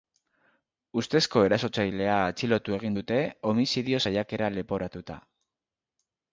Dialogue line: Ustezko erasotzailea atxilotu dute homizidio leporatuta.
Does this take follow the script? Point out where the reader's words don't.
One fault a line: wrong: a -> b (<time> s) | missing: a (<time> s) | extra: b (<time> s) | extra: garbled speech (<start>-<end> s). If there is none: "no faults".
extra: egin (2.8 s)
extra: saiakera (4.1 s)